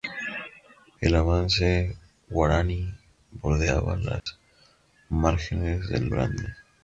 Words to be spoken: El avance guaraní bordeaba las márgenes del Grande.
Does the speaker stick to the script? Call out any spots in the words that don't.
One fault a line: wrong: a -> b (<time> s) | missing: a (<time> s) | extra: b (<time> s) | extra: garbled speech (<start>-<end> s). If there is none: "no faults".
no faults